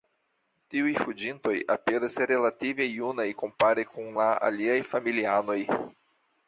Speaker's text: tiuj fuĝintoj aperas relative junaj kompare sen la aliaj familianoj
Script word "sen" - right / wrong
wrong